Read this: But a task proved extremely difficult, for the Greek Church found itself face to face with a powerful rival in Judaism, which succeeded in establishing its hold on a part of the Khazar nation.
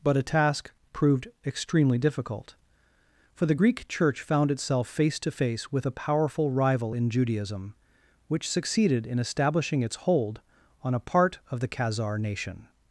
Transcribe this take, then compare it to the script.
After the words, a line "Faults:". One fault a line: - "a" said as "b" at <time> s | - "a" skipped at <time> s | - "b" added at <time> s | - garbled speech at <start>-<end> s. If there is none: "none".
But a task proved extremely difficult, for the Greek Church found itself face to face with a powerful rival in Judaism, which succeeded in establishing its hold on a part of the Khazar nation.
Faults:
none